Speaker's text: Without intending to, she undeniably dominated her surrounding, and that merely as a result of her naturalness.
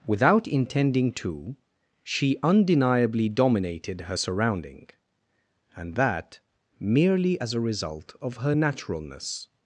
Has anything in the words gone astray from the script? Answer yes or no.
no